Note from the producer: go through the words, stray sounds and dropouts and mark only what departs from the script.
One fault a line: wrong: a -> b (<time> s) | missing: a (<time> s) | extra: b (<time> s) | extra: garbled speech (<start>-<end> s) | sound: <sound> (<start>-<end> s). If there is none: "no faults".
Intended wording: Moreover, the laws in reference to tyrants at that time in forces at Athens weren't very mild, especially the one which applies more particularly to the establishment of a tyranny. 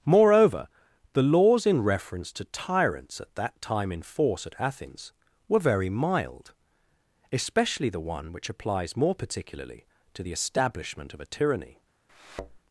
wrong: forces -> force (4.0 s)
wrong: weren't -> were (5.5 s)
sound: thud (12.1-12.6 s)